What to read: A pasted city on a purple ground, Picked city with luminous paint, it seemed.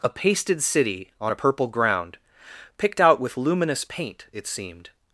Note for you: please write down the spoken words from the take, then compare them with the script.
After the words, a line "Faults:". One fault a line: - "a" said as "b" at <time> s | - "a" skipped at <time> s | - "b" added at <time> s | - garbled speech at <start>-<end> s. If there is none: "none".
A pasted city on a purple ground, Picked out with luminous paint, it seemed.
Faults:
- "city" said as "out" at 3.0 s